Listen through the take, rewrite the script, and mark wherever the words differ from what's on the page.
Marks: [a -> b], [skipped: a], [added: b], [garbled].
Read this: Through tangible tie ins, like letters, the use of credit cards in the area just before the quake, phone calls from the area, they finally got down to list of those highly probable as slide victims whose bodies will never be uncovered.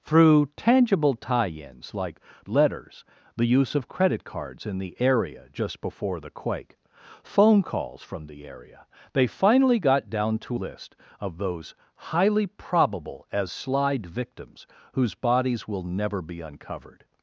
Through tangible tie ins, like letters, the use of credit cards in the area just before the quake, phone calls from the area, they finally got down to list of those highly probable as slide victims whose bodies will never be uncovered.